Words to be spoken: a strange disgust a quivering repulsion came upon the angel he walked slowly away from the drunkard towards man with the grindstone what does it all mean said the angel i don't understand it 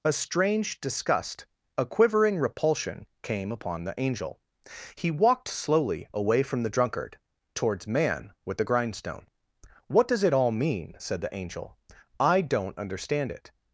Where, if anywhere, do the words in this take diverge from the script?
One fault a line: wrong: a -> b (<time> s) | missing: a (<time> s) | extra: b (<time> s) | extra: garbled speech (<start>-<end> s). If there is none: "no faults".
no faults